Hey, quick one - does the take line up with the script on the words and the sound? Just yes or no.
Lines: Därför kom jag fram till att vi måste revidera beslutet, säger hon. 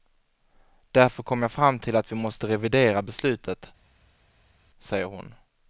yes